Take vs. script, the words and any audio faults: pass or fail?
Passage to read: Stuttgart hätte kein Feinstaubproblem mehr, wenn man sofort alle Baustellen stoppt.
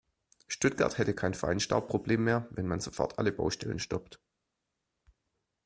pass